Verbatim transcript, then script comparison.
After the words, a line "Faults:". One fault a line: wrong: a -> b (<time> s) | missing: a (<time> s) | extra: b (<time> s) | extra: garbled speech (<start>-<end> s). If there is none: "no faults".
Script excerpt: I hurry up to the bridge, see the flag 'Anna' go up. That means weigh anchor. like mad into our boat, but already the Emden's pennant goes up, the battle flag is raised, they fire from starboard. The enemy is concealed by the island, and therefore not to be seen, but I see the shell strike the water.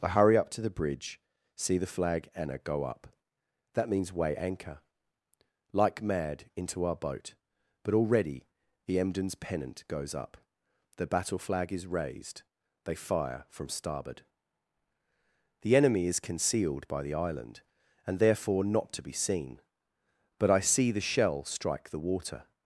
I hurry up to the bridge, see the flag 'Anna' go up. That means weigh anchor. like mad into our boat, but already the Emden's pennant goes up, the battle flag is raised, they fire from starboard. The enemy is concealed by the island, and therefore not to be seen, but I see the shell strike the water.
Faults:
no faults